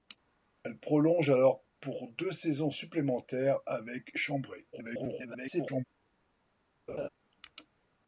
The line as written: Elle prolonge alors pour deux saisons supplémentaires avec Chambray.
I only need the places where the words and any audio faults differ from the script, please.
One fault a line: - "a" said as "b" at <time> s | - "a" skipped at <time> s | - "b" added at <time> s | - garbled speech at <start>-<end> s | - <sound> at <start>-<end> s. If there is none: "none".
- garbled speech at 4.7-5.8 s
- laugh at 6.9-7.1 s